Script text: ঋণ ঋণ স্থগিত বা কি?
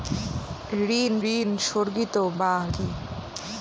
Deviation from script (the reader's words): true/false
false